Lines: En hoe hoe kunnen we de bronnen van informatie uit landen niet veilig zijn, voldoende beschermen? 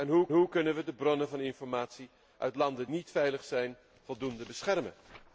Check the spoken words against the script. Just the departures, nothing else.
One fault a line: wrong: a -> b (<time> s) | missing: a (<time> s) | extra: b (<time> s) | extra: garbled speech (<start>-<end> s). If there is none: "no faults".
no faults